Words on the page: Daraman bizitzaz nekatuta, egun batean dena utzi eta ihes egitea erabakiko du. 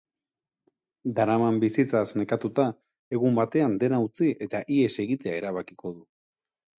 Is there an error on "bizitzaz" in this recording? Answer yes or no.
no